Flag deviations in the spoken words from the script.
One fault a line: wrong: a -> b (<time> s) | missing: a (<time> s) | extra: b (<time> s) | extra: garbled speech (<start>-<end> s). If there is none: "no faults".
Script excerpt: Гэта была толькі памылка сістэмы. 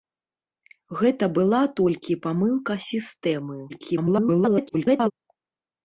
extra: garbled speech (3.7-5.1 s)